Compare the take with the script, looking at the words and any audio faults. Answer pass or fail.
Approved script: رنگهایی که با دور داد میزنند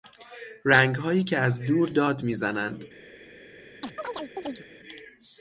fail